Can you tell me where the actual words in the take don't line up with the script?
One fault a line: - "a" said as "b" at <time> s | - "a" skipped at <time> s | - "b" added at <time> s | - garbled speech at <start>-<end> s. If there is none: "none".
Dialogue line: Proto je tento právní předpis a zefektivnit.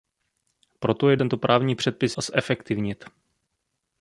none